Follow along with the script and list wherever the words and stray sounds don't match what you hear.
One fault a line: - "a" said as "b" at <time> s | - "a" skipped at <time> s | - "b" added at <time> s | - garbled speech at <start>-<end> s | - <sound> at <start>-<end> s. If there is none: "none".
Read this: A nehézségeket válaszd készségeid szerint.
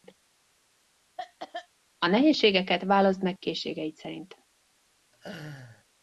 - cough at 1.2-1.7 s
- "meg" added at 3.2 s
- laugh at 5.1-5.8 s